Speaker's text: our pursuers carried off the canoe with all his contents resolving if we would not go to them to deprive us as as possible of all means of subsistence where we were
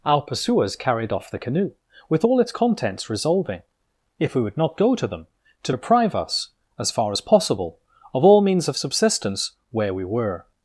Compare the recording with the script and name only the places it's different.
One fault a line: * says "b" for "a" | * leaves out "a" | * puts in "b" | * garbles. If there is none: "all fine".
* says "its" for "his"
* puts in "far"